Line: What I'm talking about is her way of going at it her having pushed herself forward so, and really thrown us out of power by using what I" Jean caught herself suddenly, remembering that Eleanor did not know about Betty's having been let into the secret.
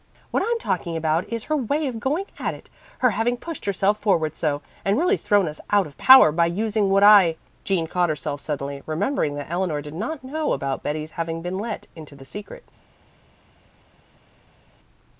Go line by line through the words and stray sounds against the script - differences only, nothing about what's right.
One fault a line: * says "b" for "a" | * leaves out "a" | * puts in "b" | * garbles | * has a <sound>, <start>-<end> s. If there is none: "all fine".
all fine